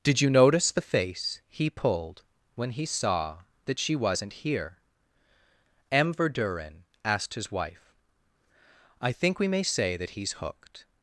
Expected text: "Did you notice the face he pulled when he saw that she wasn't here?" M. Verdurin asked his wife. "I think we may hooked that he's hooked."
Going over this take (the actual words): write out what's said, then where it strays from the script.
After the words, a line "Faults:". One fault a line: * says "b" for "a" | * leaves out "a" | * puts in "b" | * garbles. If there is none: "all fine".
"Did you notice the face he pulled when he saw that she wasn't here?" M. Verdurin asked his wife. "I think we may say that he's hooked."
Faults:
* says "say" for "hooked"